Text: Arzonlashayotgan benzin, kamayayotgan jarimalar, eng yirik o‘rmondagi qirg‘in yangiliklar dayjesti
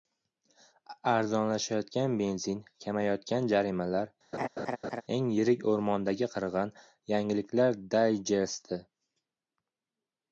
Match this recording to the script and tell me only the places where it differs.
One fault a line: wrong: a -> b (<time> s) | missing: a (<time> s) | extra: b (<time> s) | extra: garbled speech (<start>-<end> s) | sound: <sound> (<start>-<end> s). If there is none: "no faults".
sound: laugh (4.3-5.0 s)